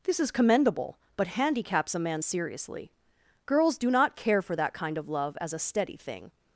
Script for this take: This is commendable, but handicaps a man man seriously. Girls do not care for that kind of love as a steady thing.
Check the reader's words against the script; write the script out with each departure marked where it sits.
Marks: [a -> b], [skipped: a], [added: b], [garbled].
This is commendable, but handicaps a man [skipped: man] seriously. Girls do not care for that kind of love as a steady thing.